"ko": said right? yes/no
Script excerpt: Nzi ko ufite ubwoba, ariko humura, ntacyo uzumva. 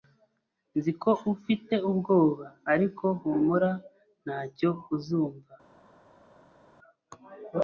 yes